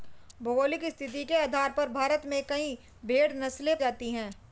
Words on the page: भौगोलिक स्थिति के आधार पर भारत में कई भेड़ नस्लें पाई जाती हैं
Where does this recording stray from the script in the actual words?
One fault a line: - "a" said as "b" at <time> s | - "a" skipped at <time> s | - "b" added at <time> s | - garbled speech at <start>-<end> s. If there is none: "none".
- "पाई" skipped at 3.8 s